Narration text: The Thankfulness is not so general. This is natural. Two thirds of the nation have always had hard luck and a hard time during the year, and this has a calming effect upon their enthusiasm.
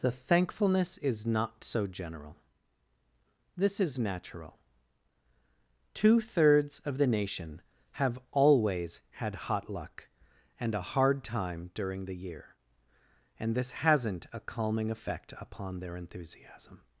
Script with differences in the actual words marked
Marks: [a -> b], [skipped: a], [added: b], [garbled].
The Thankfulness is not so general. This is natural. Two thirds of the nation have always had [hard -> hot] luck and a hard time during the year, and this [has -> hasn't] a calming effect upon their enthusiasm.